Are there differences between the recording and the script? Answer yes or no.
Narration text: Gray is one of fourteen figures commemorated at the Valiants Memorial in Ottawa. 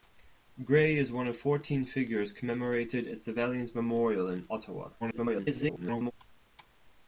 yes